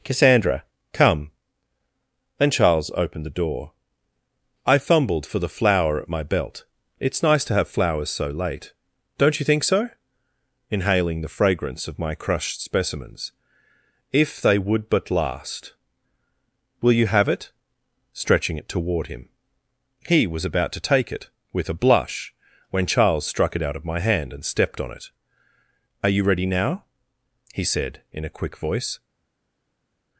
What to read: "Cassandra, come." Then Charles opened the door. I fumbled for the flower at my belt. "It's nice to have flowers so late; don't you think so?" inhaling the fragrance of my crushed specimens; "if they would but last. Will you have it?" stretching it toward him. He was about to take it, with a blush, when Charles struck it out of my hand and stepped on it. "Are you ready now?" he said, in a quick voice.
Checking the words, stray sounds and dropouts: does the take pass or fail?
pass